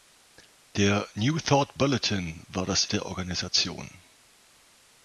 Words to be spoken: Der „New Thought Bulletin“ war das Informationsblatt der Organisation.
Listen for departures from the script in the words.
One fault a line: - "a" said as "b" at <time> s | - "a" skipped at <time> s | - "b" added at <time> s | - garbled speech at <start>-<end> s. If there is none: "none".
- "Informationsblatt" skipped at 2.9 s